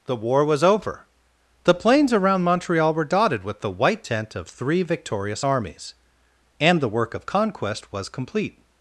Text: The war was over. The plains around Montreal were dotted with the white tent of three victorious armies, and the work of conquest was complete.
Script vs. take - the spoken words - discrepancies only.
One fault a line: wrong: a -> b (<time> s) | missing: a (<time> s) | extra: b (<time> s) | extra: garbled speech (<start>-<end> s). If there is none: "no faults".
no faults